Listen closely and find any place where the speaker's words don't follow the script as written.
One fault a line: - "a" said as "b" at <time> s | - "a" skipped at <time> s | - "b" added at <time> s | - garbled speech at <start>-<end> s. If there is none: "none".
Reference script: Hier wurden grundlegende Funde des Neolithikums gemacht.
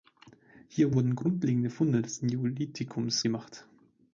none